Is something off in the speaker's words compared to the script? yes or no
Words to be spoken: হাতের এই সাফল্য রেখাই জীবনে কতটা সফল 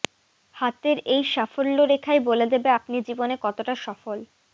yes